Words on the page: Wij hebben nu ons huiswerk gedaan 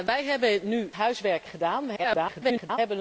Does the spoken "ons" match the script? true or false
false